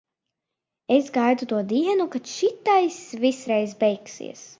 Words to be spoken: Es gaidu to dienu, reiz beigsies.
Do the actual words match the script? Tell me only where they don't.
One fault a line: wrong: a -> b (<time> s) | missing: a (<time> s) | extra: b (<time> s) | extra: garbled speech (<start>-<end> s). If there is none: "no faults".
extra: kad šitais viss (2.1 s)